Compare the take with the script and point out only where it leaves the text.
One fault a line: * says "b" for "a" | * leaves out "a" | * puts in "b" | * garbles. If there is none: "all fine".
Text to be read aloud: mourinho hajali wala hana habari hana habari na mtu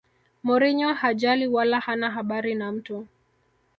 * leaves out "hana habari"